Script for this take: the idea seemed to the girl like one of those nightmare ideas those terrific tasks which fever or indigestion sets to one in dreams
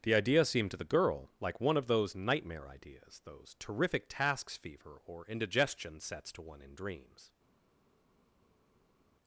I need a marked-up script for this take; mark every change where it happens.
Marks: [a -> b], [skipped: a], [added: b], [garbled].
the idea seemed to the girl like one of those nightmare ideas those terrific tasks [skipped: which] fever or indigestion sets to one in dreams